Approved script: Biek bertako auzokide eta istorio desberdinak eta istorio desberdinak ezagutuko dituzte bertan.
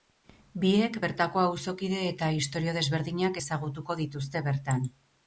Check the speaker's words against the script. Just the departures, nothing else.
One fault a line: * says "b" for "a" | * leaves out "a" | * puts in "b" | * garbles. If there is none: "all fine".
* leaves out "eta istorio desberdinak"